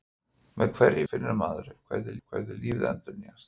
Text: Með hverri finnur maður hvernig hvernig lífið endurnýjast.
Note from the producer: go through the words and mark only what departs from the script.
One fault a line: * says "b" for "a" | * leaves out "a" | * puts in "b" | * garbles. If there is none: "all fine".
all fine